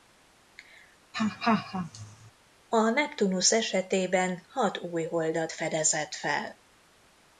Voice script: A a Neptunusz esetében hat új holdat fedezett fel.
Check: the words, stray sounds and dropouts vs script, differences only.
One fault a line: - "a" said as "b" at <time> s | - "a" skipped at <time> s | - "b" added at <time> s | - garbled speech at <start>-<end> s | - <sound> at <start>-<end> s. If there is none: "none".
- laugh at 1.1-2.3 s
- "a" skipped at 2.9 s